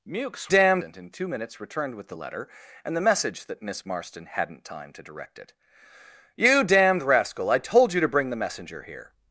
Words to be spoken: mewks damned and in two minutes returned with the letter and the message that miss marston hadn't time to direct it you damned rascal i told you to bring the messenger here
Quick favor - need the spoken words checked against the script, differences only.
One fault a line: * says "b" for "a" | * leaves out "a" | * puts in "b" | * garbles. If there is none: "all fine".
all fine